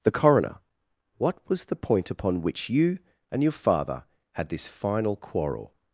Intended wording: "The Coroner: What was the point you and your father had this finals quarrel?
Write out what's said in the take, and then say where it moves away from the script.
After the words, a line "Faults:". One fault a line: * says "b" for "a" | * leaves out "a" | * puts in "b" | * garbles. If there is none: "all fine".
"The Coroner: What was the point upon which you and your father had this final quarrel?
Faults:
* puts in "upon which"
* says "final" for "finals"